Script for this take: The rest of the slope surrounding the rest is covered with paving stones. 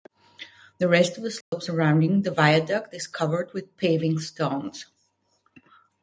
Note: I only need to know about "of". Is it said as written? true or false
true